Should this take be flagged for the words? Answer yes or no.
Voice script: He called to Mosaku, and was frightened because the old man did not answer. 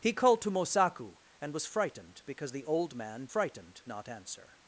yes